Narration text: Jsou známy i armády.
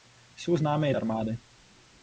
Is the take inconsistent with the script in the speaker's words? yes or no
no